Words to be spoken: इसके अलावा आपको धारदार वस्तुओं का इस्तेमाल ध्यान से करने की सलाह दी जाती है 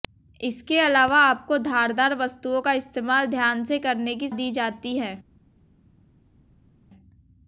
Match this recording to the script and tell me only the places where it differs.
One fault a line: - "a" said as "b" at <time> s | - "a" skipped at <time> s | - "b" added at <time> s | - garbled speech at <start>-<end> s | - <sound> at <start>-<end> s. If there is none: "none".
- "सलाह" skipped at 4.3 s